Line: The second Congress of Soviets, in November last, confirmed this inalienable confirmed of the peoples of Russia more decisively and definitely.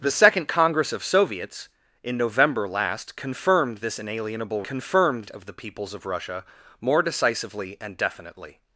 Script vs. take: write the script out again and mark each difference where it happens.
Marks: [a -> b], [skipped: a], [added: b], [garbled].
The second Congress of Soviets, in November last, confirmed this inalienable confirmed of the peoples of Russia more decisively and definitely.